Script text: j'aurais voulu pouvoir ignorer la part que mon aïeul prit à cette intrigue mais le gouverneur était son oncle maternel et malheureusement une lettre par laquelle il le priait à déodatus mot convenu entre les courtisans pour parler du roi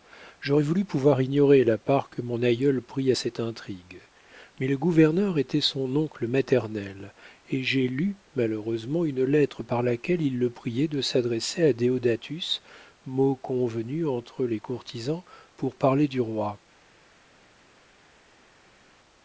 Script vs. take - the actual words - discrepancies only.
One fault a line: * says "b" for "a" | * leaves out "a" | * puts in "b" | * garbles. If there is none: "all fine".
* puts in "j'ai lu"
* puts in "de s'adresser"